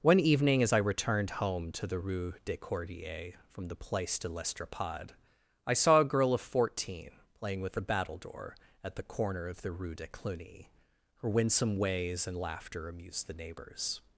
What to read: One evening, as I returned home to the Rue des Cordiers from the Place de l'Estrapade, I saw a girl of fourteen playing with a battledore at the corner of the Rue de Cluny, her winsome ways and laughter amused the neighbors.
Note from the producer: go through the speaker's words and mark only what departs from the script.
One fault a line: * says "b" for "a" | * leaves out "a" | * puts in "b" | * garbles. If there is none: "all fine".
all fine